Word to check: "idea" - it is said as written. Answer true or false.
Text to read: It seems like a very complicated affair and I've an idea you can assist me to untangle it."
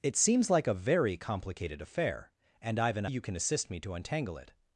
false